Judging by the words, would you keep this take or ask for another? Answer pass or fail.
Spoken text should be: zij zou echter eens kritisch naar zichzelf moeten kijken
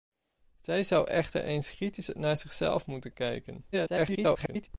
fail